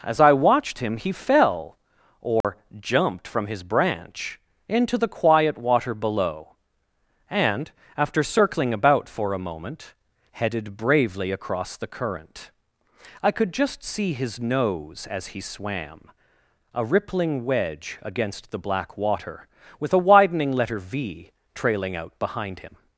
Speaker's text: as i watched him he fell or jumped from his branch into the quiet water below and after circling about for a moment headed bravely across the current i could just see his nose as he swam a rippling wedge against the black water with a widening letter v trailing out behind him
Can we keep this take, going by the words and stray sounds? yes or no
no